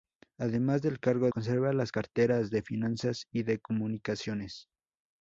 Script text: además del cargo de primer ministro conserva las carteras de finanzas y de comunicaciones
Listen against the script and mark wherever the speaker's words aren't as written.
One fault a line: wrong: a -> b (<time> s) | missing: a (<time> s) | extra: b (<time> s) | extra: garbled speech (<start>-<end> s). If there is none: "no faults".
missing: de primer ministro (1.3 s)